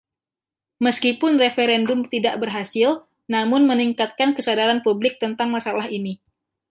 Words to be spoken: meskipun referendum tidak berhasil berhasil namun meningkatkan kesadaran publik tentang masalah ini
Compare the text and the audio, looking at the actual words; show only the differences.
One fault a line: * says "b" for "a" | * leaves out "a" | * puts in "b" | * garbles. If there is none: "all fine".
* leaves out "berhasil"